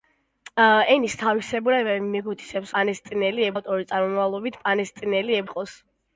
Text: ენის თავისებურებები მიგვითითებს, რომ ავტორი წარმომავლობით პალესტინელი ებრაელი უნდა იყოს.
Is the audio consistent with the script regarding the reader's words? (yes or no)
no